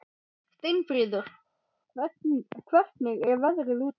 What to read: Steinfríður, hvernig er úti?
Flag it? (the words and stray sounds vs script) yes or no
yes